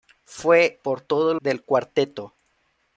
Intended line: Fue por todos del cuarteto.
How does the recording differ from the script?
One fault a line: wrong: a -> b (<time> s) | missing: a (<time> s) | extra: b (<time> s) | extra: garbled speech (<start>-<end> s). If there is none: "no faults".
no faults